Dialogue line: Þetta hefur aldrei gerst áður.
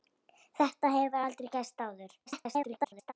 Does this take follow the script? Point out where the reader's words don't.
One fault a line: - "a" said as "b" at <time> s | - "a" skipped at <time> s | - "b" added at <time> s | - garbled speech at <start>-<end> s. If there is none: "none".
- garbled speech at 2.3-3.1 s